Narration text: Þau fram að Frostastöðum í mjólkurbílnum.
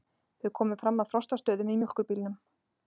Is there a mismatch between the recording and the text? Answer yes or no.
yes